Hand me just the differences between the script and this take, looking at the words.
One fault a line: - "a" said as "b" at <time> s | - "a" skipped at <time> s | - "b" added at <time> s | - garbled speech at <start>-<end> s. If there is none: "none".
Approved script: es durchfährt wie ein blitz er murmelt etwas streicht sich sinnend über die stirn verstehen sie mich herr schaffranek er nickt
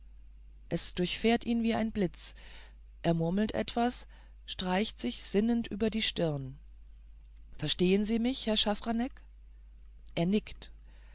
- "ihn" added at 1.4 s